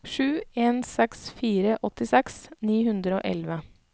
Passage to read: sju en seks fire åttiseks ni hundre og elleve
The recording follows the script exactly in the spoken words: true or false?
true